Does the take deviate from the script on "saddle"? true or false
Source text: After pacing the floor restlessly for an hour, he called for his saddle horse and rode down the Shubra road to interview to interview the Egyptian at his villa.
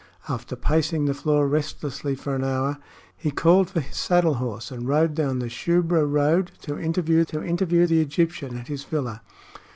false